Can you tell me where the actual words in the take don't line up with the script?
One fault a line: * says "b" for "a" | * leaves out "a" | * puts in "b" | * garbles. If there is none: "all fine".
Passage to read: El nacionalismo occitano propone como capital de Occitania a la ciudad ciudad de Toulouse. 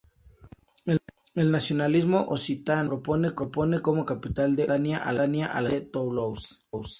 * leaves out "ciudad"